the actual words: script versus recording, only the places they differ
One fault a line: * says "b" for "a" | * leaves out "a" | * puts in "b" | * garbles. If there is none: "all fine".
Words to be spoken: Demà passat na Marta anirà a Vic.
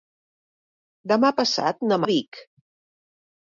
* leaves out "Marta anirà"